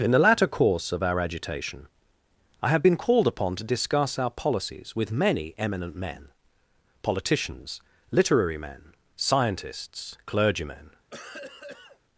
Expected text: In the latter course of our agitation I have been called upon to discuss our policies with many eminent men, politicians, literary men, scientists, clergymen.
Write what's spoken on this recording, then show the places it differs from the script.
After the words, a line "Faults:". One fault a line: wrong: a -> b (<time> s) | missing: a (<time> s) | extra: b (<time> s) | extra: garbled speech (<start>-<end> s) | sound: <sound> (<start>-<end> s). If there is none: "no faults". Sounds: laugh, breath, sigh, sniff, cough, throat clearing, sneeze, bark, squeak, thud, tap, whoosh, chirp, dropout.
In the latter course of our agitation I have been called upon to discuss our policies with many eminent men, politicians, literary men, scientists, clergymen.
Faults:
sound: cough (11.1-12.0 s)